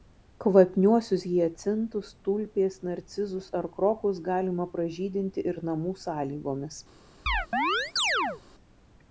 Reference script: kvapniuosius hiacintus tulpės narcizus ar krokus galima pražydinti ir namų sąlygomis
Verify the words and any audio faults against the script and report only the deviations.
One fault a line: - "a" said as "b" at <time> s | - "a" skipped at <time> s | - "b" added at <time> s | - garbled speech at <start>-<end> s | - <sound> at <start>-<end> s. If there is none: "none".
- chirp at 7.3-8.4 s